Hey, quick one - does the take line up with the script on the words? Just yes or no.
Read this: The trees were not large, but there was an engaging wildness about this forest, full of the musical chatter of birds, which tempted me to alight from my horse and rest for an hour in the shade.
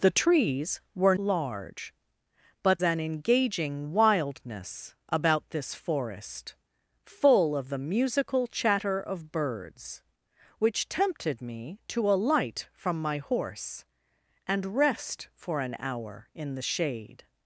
no